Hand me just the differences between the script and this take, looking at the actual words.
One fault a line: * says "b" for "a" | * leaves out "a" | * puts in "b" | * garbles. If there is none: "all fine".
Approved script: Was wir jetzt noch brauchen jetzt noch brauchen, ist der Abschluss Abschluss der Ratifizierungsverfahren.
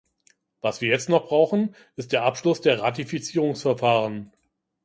* leaves out "jetzt noch brauchen"
* leaves out "Abschluss"